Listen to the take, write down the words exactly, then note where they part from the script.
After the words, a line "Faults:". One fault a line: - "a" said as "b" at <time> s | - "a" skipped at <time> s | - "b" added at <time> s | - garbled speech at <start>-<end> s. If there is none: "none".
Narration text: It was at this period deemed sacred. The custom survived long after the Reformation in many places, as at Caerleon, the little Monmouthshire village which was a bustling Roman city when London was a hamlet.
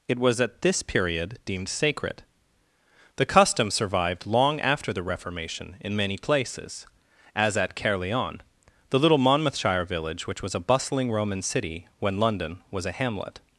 It was at this period deemed sacred. The custom survived long after the Reformation in many places, as at Caerleon, the little Monmouthshire village which was a bustling Roman city when London was a hamlet.
Faults:
none